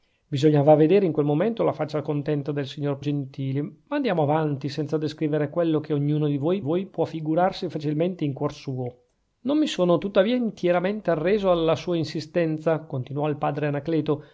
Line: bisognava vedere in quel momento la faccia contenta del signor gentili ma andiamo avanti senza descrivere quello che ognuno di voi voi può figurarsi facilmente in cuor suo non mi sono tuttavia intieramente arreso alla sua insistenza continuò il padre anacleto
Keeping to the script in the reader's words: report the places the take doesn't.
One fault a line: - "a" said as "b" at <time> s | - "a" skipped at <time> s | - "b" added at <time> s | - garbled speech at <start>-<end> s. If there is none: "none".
none